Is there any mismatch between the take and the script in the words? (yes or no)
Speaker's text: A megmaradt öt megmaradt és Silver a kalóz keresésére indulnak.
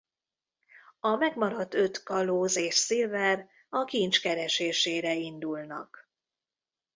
yes